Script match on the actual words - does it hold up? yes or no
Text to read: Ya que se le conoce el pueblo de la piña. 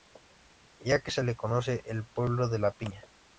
yes